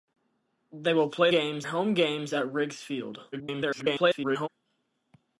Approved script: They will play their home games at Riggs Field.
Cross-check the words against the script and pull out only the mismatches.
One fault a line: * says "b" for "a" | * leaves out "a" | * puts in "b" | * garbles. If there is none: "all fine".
* says "games" for "their"
* garbles